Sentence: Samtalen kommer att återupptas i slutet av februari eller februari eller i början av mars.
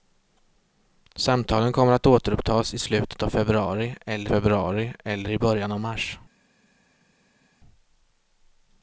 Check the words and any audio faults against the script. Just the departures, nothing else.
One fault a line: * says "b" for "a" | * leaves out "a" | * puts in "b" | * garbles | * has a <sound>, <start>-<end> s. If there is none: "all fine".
all fine